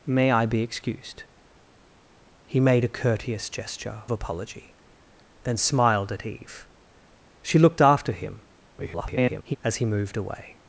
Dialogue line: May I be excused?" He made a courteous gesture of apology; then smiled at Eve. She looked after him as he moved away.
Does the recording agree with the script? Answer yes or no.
no